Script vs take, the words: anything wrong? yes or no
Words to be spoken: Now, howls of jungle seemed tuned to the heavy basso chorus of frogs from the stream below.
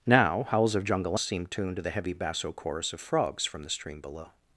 no